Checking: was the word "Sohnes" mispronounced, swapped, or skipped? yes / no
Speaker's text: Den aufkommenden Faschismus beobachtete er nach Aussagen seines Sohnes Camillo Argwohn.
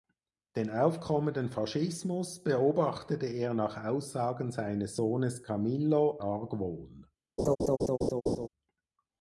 no